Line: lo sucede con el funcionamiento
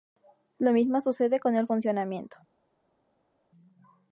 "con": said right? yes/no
yes